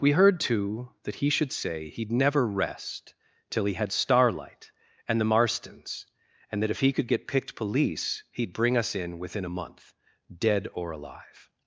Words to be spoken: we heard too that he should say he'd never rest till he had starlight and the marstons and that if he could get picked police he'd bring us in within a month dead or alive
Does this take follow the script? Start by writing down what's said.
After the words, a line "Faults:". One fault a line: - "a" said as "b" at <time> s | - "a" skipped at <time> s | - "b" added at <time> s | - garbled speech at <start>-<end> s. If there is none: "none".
we heard too that he should say he'd never rest till he had starlight and the marstons and that if he could get picked police he'd bring us in within a month dead or alive
Faults:
none